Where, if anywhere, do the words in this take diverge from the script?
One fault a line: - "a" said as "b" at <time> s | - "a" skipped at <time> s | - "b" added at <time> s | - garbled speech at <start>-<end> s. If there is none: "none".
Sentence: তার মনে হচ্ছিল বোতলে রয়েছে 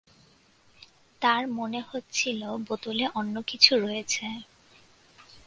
- "অন্য কিছু" added at 3.1 s